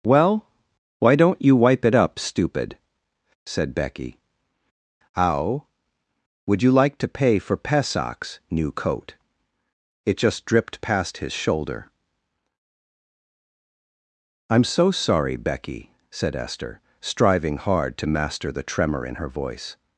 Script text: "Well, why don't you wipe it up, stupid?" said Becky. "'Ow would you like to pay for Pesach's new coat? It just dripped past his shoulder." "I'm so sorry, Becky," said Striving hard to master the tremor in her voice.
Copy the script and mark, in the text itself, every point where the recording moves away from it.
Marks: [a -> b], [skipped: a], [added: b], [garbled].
"Well, why don't you wipe it up, stupid?" said Becky. "'Ow would you like to pay for Pesach's new coat? It just dripped past his shoulder." "I'm so sorry, Becky," said [added: Esther] Striving hard to master the tremor in her voice.